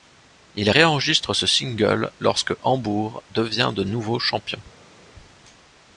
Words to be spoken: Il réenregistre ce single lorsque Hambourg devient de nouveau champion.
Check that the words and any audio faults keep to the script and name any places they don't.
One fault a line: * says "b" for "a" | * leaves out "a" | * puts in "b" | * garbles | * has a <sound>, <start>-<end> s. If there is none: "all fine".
all fine